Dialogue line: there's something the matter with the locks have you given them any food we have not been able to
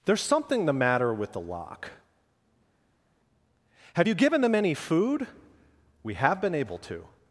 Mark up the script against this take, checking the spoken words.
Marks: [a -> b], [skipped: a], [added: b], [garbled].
there's something the matter with the [locks -> lock] have you given them any food we have [skipped: not] been able to